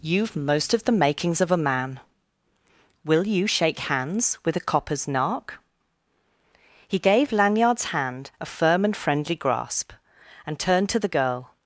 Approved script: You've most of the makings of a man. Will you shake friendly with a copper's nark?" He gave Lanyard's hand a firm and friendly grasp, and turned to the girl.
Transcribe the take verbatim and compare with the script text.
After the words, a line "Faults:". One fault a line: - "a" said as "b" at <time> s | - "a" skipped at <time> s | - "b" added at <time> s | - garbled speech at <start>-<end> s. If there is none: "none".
You've most of the makings of a man. Will you shake hands with a copper's nark?" He gave Lanyard's hand a firm and friendly grasp, and turned to the girl.
Faults:
- "friendly" said as "hands" at 3.8 s